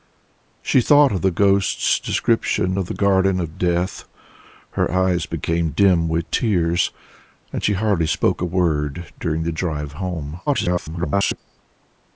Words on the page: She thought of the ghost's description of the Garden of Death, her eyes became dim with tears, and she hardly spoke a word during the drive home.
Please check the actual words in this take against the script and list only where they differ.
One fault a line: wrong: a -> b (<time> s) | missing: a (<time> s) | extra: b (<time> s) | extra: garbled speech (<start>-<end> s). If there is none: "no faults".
extra: garbled speech (10.5-11.4 s)